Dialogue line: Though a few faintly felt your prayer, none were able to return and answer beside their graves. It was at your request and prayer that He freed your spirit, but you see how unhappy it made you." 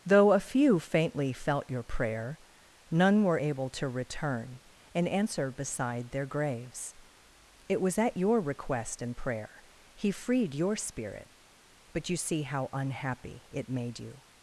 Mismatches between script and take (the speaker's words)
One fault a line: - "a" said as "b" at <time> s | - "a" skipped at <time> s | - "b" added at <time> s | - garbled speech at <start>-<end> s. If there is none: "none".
- "that" skipped at 9.6 s